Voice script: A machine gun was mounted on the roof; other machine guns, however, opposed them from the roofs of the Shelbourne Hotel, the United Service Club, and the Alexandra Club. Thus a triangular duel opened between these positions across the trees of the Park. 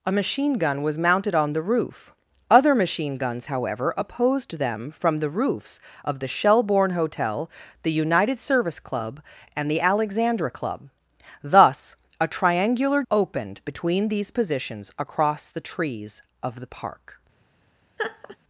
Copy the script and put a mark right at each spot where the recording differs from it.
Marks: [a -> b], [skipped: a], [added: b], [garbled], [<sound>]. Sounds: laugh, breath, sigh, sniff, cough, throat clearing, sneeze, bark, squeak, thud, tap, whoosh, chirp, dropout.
A machine gun was mounted on the roof; other machine guns, however, opposed them from the roofs of the Shelbourne Hotel, the United Service Club, and the Alexandra Club. Thus a triangular [skipped: duel] opened between these positions across the trees of the Park. [laugh]